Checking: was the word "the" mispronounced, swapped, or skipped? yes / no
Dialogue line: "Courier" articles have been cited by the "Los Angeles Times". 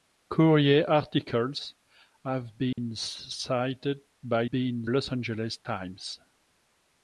yes